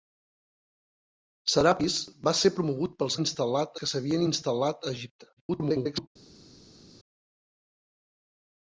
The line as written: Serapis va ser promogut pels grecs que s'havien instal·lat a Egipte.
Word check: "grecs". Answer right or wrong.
wrong